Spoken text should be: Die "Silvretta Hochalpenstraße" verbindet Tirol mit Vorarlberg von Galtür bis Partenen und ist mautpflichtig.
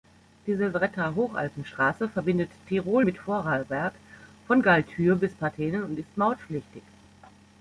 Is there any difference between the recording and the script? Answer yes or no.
no